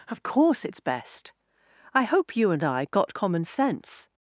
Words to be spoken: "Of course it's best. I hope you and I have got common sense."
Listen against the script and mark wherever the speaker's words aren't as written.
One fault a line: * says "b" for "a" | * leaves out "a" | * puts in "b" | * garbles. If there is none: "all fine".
* leaves out "have"